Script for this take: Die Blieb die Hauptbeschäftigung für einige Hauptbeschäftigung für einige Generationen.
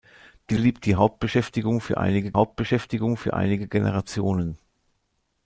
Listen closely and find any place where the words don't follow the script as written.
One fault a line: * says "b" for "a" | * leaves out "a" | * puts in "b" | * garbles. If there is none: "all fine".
all fine